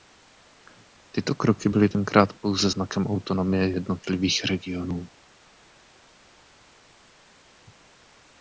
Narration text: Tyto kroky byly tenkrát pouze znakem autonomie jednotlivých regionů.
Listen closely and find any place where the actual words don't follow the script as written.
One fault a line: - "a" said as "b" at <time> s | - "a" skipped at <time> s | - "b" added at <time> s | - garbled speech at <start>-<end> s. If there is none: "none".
none